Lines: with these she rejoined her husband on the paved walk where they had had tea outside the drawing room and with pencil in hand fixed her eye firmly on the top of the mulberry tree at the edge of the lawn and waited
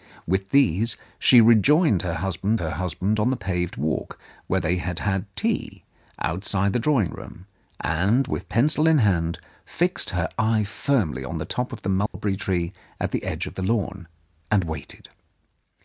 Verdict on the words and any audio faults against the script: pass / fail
fail